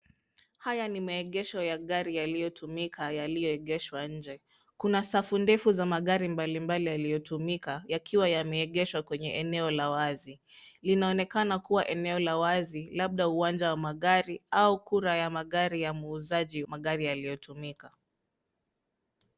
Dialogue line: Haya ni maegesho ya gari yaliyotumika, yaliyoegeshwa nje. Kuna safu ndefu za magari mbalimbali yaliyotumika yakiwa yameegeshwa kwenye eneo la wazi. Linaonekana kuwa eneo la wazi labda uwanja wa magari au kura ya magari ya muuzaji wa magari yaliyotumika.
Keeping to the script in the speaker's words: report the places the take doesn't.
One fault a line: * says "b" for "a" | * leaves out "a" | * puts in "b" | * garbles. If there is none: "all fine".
* leaves out "wa"